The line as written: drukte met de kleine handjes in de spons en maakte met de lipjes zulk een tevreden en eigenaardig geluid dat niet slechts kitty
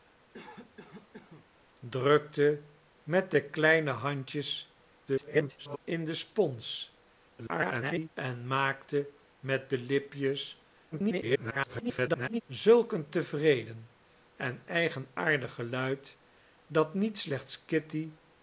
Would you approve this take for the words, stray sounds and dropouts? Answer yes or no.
no